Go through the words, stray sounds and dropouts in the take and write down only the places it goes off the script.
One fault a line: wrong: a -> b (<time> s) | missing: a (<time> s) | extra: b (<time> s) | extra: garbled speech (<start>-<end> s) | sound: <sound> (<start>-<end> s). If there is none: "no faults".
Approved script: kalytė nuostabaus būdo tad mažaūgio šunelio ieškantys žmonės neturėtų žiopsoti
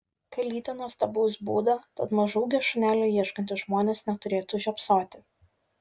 no faults